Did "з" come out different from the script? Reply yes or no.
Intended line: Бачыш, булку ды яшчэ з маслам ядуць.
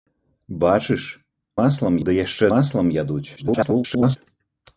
yes